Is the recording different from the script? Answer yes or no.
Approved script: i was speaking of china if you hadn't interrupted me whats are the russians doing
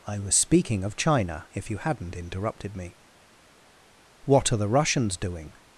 yes